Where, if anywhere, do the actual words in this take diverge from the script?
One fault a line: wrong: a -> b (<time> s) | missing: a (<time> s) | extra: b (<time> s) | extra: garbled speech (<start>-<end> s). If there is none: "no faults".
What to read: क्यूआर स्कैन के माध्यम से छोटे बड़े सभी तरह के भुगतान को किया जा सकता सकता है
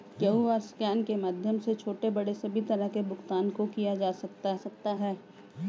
no faults